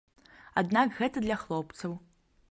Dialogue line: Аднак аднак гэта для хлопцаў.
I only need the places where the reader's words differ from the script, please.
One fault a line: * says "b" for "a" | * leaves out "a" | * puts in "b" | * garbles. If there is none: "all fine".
* leaves out "аднак"